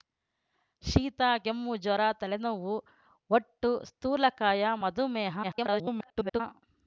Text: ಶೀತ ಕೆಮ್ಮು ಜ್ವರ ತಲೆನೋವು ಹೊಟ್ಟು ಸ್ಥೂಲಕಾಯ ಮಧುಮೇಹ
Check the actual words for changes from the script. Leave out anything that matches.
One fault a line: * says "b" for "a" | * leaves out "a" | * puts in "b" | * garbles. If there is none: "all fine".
* garbles